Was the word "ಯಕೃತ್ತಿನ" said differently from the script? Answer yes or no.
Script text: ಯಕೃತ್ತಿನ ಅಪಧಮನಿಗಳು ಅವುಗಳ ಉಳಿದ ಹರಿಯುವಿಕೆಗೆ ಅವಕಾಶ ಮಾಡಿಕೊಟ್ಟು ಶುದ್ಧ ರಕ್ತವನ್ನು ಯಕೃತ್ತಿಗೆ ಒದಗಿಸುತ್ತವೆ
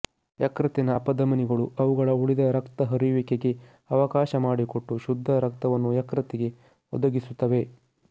no